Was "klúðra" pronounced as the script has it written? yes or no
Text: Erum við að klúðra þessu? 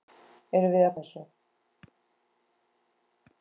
no